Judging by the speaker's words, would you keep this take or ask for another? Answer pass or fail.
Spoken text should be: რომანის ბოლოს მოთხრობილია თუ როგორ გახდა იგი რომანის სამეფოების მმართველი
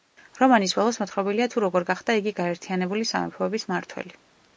fail